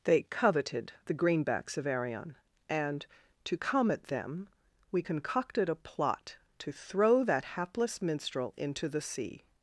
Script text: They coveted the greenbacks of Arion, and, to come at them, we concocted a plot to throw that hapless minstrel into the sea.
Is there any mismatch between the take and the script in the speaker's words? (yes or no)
no